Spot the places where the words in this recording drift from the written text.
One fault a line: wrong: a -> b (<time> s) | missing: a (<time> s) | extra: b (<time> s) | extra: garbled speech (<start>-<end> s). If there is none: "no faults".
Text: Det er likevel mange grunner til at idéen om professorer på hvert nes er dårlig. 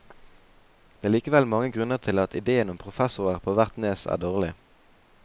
no faults